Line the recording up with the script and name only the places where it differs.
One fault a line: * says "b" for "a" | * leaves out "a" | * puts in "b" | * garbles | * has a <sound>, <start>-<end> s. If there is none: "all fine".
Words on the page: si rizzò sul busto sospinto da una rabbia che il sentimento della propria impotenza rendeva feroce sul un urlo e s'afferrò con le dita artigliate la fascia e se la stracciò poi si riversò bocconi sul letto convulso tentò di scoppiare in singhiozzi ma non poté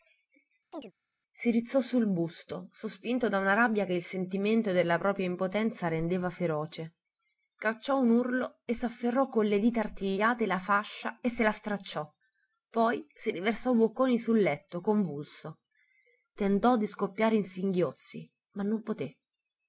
* has a chirp, 0.7-0.9 s
* says "cacciò" for "sul"